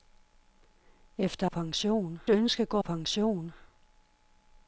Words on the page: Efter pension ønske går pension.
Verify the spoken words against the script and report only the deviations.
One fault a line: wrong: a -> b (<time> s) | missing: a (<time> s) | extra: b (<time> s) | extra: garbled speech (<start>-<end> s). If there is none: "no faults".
no faults